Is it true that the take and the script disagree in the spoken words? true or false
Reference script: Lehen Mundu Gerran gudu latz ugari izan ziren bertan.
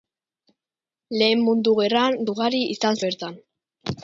true